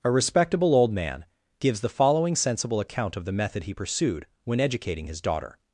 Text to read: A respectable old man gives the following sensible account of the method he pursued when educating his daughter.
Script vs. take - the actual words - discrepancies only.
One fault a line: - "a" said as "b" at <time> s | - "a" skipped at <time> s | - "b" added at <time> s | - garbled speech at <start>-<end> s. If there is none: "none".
none